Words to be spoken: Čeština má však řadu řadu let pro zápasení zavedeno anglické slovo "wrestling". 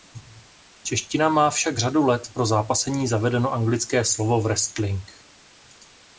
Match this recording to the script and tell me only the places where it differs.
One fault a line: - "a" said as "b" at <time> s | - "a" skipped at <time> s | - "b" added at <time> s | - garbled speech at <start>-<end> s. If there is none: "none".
- "řadu" skipped at 2.0 s